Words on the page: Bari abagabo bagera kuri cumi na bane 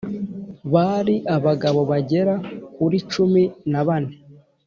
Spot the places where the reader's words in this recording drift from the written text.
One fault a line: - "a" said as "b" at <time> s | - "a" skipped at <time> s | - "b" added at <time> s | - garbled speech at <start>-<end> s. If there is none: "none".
none